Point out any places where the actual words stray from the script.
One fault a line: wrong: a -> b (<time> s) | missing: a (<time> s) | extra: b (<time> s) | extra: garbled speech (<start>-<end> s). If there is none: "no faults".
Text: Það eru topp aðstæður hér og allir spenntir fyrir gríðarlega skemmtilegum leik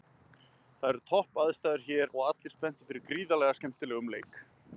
no faults